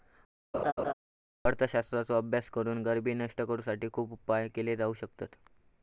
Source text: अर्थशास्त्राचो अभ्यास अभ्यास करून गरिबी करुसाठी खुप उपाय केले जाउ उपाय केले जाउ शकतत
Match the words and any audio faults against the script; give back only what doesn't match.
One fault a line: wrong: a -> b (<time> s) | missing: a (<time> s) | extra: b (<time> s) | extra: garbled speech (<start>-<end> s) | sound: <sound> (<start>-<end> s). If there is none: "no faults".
sound: laugh (0.5-0.9 s)
missing: अभ्यास (2.5 s)
extra: नष्ट (3.1 s)
missing: उपाय केले जाउ (4.9 s)